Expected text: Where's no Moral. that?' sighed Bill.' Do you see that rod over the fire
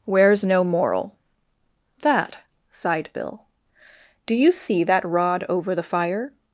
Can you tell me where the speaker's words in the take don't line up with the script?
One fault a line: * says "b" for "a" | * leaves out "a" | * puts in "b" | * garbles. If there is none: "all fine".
all fine